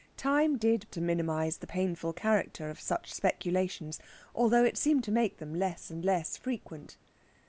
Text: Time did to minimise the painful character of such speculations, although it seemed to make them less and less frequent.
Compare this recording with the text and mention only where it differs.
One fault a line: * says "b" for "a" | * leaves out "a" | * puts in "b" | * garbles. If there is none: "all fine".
all fine